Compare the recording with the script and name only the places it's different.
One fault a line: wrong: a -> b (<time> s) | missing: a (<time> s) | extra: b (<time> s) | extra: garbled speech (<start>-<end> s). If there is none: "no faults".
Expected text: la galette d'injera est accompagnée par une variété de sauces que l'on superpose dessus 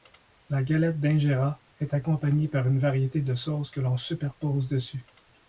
no faults